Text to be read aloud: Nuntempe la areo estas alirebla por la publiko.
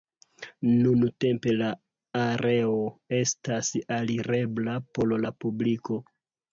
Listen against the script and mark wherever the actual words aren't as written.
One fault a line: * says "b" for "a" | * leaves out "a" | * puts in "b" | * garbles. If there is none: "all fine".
all fine